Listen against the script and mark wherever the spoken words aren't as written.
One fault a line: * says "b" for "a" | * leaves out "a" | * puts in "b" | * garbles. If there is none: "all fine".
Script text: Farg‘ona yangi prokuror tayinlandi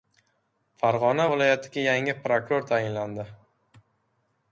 * puts in "viloyatiga"